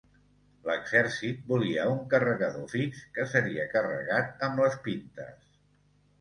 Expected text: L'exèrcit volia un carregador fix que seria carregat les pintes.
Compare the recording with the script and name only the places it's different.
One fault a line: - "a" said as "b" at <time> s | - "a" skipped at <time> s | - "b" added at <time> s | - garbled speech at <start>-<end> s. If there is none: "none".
- "amb" added at 4.5 s